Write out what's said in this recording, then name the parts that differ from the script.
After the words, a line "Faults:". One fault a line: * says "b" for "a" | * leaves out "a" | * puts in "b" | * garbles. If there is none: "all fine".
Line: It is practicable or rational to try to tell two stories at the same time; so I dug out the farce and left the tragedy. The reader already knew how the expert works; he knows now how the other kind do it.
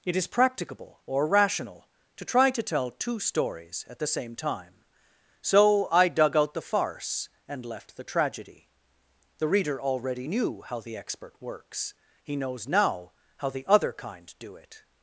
It is practicable or rational to try to tell two stories at the same time; so I dug out the farce and left the tragedy. The reader already knew how the expert works; he knows now how the other kind do it.
Faults:
all fine